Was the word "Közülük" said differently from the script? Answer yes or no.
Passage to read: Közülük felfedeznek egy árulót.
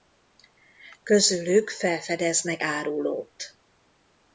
no